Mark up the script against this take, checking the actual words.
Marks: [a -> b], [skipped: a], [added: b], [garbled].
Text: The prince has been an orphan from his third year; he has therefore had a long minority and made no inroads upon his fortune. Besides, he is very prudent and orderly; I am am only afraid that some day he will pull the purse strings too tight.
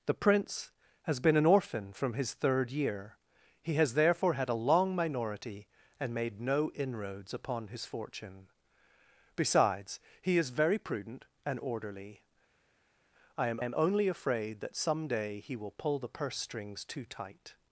The prince has been an orphan from his third year; he has therefore had a long minority and made no inroads upon his fortune. Besides, he is very prudent and orderly; I am am only afraid that some day he will pull the purse strings too tight.